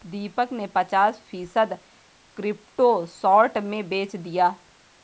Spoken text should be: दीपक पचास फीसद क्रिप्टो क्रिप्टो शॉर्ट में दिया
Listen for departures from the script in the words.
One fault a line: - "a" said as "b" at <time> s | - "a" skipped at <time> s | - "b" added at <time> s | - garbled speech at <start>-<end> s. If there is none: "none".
- "ने" added at 0.5 s
- "क्रिप्टो" skipped at 3.0 s
- "बेच" added at 3.9 s